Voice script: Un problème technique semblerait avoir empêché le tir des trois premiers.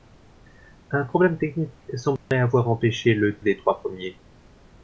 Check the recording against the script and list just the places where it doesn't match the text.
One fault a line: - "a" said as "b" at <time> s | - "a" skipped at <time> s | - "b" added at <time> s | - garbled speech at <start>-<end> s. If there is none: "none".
- "tir" skipped at 3.4 s